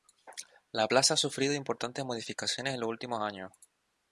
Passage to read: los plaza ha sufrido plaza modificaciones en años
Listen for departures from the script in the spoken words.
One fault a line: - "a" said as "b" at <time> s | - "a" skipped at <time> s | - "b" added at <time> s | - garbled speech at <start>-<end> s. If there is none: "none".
- "los" said as "la" at 0.7 s
- "plaza" said as "importantes" at 1.5 s
- "los últimos" added at 2.8 s